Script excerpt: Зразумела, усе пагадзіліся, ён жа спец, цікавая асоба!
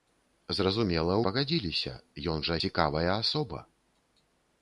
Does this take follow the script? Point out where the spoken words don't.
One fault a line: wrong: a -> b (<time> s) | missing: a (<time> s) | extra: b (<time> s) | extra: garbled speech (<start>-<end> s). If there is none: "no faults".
missing: усе (1.2 s)
missing: спец (2.6 s)